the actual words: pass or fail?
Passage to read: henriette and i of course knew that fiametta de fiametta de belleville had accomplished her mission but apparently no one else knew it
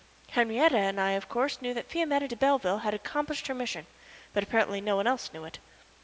fail